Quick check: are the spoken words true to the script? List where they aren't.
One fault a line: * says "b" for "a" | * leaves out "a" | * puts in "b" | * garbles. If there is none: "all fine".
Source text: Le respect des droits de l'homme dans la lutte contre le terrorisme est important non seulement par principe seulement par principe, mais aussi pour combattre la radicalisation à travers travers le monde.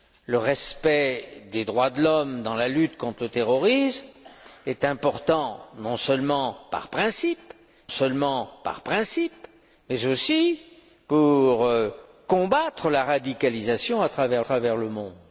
all fine